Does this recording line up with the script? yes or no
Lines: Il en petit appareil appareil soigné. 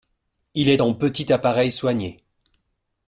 no